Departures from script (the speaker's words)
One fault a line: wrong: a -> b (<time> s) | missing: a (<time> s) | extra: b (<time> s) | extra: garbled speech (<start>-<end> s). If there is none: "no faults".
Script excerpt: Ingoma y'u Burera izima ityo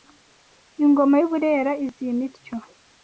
no faults